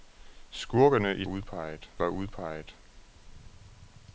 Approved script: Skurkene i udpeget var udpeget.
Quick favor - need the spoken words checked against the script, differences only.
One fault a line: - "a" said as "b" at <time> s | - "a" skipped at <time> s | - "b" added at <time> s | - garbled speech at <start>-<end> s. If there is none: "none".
none